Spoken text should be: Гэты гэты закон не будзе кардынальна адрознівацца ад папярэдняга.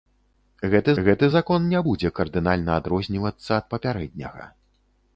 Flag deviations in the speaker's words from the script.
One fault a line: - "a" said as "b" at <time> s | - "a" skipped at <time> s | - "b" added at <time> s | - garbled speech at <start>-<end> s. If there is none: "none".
none